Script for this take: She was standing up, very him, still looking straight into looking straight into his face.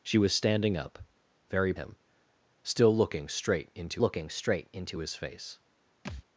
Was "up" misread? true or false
false